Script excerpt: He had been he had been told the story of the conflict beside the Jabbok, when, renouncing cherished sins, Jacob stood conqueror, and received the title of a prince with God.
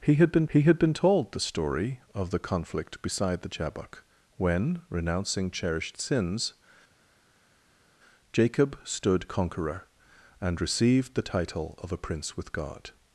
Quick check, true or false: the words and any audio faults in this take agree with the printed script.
true